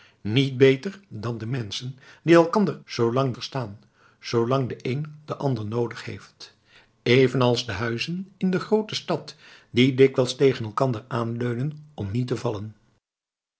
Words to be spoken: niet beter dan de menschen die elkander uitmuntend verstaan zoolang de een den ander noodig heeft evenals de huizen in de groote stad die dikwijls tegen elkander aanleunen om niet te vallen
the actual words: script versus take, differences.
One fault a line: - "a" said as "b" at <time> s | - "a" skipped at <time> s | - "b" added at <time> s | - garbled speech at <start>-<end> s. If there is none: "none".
- "uitmuntend" said as "zoolang" at 2.8 s